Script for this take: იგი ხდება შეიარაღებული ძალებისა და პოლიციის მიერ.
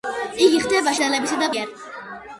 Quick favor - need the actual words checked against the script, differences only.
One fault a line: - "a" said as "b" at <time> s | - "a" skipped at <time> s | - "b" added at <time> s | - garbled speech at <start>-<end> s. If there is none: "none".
- "შეიარაღებული" skipped at 0.9 s
- "პოლიციის" skipped at 1.5 s